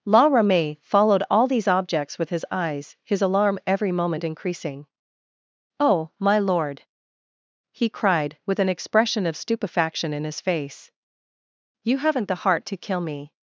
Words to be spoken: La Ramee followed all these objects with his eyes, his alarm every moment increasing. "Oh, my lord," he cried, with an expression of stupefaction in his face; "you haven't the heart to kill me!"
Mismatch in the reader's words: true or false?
false